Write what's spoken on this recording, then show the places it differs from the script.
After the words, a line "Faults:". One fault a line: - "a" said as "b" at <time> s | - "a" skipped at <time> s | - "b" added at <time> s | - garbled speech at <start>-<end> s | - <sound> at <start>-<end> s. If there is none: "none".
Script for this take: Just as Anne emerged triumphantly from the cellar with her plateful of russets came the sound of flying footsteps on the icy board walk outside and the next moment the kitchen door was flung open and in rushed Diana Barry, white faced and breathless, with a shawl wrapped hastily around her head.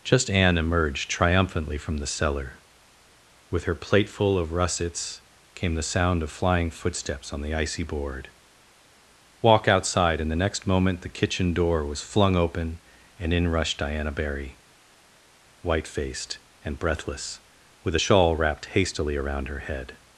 Just Anne emerged triumphantly from the cellar with her plateful of russets came the sound of flying footsteps on the icy board walk outside and the next moment the kitchen door was flung open and in rushed Diana Barry, white faced and breathless, with a shawl wrapped hastily around her head.
Faults:
- "as" skipped at 0.3 s